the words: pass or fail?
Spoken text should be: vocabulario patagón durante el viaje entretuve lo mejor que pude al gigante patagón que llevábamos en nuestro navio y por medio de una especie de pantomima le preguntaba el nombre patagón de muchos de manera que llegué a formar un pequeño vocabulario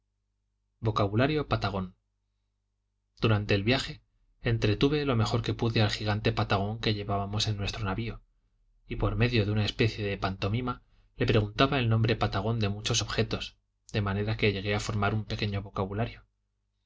fail